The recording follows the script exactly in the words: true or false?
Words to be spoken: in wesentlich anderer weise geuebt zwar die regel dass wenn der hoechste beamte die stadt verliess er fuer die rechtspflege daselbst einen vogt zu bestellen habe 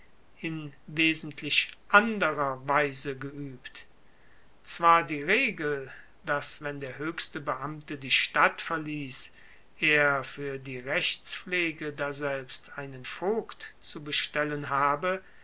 true